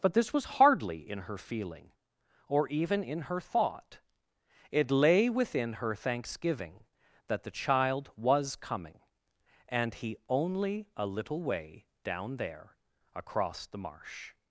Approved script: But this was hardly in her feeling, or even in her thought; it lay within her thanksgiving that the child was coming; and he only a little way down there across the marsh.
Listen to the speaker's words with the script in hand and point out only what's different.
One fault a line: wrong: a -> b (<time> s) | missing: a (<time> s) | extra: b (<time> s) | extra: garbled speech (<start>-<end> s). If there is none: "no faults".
no faults